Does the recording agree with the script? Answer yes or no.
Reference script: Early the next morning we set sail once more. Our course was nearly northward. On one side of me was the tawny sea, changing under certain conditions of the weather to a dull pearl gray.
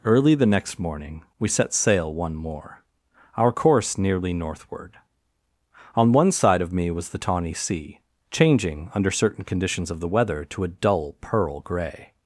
no